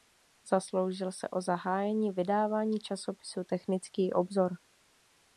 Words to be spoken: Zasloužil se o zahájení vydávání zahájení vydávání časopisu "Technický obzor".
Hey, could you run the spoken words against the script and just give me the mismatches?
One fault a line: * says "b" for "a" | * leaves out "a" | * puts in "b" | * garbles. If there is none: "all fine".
* leaves out "zahájení vydávání"